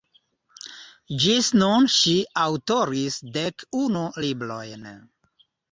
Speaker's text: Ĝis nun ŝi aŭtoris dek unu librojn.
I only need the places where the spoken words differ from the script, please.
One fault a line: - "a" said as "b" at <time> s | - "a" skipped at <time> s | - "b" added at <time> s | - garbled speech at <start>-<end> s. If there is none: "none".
none